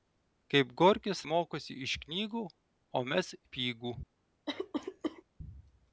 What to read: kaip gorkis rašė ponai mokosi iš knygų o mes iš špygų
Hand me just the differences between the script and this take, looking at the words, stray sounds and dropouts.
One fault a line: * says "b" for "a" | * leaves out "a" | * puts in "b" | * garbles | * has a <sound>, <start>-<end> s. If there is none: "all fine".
* leaves out "rašė ponai"
* leaves out "iš"
* has a cough, 4.5-5.2 s